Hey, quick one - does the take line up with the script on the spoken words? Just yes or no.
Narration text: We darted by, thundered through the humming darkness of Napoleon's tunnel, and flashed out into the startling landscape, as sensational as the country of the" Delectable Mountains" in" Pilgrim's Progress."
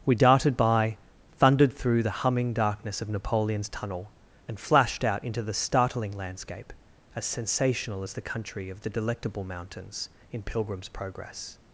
yes